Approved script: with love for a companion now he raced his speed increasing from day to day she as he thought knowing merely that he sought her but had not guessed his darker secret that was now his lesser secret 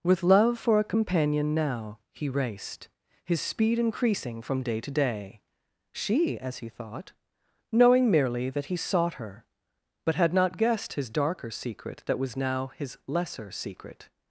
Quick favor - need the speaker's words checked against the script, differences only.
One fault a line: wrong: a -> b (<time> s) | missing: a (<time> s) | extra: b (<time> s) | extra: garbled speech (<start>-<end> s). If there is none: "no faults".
no faults